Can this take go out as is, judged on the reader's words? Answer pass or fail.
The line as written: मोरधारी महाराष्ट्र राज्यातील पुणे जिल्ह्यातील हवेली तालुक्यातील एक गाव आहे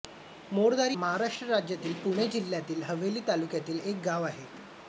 pass